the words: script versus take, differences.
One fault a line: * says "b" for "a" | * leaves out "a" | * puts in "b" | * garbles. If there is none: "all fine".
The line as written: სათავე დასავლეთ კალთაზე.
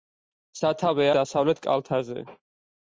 all fine